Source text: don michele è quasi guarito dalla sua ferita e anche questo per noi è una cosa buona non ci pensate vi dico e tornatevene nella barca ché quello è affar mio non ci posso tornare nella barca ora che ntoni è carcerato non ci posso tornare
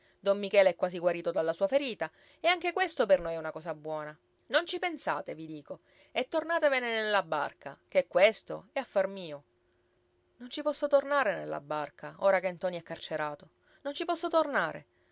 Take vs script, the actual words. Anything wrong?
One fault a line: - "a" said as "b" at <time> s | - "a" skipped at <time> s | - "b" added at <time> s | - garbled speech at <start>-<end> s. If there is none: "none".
- "quello" said as "questo" at 8.1 s